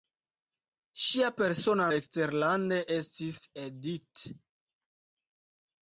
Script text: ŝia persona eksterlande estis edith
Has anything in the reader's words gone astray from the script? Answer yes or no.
no